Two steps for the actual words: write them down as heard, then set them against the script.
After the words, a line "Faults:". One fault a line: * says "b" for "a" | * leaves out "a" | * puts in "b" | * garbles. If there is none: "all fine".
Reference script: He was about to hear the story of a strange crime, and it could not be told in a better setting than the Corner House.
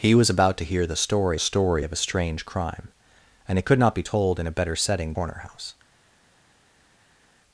He was about to hear the story story of a strange crime, and it could not be told in a better setting Corner House.
Faults:
* puts in "story"
* leaves out "than the"